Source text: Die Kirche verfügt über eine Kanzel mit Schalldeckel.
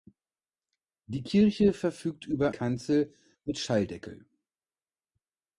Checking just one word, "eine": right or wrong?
wrong